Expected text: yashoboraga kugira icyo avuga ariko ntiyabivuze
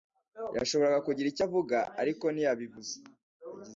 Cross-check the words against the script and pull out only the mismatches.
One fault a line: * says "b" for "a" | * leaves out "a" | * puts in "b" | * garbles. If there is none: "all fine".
all fine